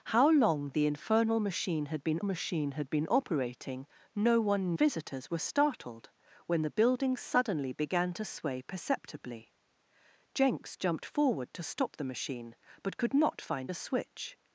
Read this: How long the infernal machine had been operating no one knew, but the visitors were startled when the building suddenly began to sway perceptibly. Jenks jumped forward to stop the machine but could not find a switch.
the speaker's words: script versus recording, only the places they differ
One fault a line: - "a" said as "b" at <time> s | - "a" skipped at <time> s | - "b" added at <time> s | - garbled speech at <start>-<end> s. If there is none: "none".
- "machine had been" added at 2.2 s
- "knew but the" skipped at 4.7 s